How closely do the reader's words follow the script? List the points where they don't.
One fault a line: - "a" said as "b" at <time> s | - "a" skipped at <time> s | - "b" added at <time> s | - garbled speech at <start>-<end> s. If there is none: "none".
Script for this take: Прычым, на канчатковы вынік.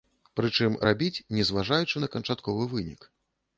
- "рабіць не зважаючы" added at 0.9 s